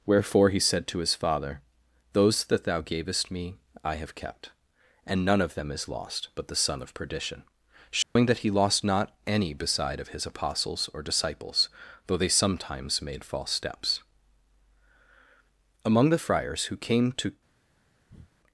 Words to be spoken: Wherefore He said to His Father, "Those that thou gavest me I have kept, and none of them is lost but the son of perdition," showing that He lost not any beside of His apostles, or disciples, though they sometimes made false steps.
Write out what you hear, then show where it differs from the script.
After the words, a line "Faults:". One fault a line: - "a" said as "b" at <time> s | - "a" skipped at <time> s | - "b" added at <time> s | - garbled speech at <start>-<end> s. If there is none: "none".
Wherefore He said to His Father, "Those that thou gavest me I have kept, and none of them is lost but the son of perdition," showing that He lost not any beside of His apostles, or disciples, though they sometimes made false steps. Among the friars who came to
Faults:
- "Among the friars who came to" added at 15.8 s